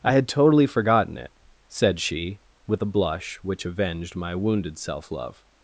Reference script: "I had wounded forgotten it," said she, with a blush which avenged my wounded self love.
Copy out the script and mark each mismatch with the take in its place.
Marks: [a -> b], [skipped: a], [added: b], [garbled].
"I had [wounded -> totally] forgotten it," said she, with a blush which avenged my wounded self love.